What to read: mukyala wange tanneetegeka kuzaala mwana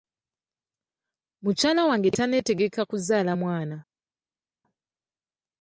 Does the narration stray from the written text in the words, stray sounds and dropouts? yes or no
no